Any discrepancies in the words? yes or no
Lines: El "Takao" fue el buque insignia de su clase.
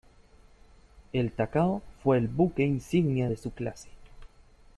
no